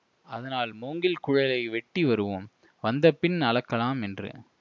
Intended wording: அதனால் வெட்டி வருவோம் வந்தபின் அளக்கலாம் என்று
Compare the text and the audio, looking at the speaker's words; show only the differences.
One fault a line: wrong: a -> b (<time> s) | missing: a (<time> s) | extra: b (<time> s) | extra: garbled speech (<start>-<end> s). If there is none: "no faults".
extra: மூங்கில் குழலை (0.7 s)